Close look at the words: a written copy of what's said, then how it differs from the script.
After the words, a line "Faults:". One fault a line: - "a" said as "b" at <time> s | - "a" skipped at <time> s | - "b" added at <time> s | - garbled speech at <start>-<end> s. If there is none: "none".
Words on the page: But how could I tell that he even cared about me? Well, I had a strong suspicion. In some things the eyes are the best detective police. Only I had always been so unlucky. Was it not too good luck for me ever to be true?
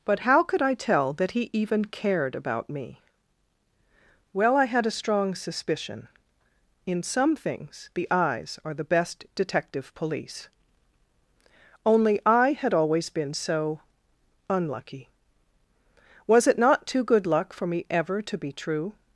But how could I tell that he even cared about me? Well, I had a strong suspicion. In some things the eyes are the best detective police. Only I had always been so unlucky. Was it not too good luck for me ever to be true?
Faults:
none